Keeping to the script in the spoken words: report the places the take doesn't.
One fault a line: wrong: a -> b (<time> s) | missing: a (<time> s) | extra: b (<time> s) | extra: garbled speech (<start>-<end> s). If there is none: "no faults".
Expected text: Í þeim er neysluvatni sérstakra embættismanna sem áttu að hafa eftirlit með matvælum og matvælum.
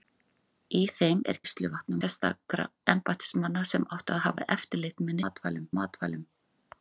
no faults